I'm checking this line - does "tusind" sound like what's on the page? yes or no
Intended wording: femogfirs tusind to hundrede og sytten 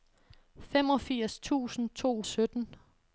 yes